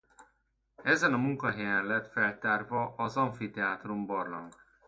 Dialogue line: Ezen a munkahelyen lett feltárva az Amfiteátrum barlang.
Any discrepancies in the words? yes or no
no